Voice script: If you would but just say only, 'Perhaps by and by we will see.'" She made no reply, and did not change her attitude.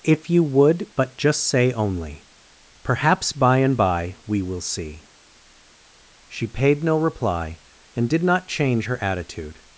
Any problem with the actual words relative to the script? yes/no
yes